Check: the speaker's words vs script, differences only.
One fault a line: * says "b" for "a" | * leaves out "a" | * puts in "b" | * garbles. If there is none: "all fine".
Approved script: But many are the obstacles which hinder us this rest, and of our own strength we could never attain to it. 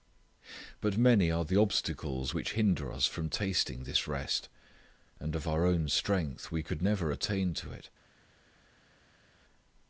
* puts in "from tasting"